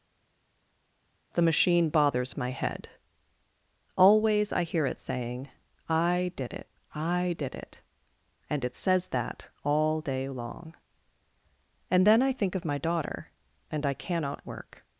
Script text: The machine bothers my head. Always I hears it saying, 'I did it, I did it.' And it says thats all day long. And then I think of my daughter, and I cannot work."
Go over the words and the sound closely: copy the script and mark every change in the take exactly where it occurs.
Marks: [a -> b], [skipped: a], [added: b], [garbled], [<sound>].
The machine bothers my head. Always I [hears -> hear] it saying, 'I did it, I did it.' And it says [thats -> that] all day long. And then I think of my daughter, and I cannot work."